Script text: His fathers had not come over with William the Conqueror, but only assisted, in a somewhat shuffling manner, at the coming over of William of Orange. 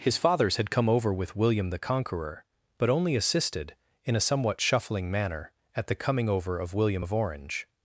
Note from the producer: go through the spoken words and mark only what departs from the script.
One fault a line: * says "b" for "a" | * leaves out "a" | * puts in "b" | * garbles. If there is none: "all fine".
* leaves out "not"